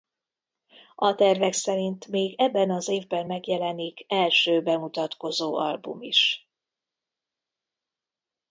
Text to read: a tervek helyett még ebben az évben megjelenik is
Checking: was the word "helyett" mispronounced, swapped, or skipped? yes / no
yes